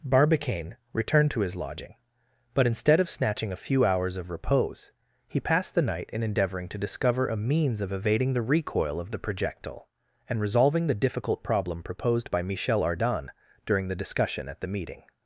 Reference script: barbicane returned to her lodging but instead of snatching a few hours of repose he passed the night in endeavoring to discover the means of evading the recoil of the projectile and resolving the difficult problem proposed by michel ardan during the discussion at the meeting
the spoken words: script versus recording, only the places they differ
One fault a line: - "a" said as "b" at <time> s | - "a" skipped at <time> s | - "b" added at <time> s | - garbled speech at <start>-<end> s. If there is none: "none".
- "her" said as "his" at 1.4 s
- "the" said as "a" at 7.3 s